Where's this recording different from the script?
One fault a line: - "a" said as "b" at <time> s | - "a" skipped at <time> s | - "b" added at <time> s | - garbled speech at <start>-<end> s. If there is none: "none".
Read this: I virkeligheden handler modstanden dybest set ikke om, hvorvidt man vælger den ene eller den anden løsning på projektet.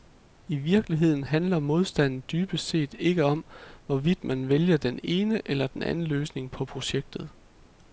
none